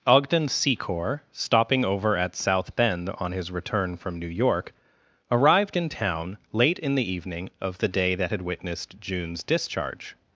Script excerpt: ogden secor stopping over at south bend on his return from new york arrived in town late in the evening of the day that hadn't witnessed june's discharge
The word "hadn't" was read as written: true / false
false